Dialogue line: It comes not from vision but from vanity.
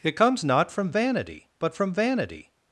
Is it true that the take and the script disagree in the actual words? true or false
true